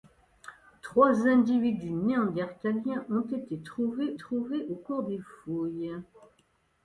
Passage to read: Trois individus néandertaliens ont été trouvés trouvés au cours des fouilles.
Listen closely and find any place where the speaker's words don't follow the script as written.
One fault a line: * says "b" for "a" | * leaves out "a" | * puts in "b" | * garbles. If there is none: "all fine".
all fine